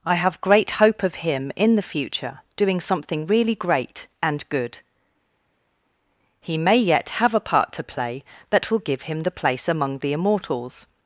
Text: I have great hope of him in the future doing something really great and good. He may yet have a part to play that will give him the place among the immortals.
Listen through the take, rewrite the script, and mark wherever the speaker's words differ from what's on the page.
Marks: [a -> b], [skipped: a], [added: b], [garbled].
I have great hope of him in the future doing something really great and good. He may yet have a part to play that will give him the place among the immortals.